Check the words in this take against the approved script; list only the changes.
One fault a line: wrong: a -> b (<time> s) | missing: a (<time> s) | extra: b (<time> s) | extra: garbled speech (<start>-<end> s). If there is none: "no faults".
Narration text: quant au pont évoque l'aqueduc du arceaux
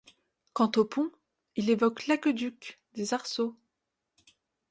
extra: il (1.6 s)
wrong: du -> des (2.9 s)